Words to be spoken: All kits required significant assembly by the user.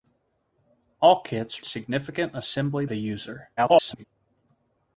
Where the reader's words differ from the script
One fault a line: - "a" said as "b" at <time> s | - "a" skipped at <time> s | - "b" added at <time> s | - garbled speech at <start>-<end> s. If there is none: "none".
- "required" skipped at 1.6 s
- "by" skipped at 2.8 s
- garbled speech at 3.6-4.0 s